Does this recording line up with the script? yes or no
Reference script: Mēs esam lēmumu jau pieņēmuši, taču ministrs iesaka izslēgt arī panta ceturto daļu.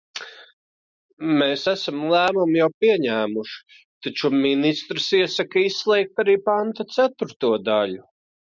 yes